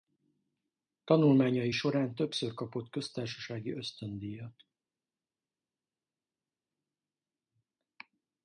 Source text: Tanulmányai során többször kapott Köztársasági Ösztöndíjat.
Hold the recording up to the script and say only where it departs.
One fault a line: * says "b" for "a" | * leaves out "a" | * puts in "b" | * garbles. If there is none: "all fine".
all fine